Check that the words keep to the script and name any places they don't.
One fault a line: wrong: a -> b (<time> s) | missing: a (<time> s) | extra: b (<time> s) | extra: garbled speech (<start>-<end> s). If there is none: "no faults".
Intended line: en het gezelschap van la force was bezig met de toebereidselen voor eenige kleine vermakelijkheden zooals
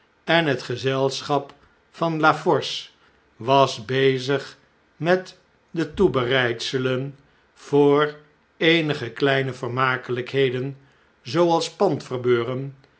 no faults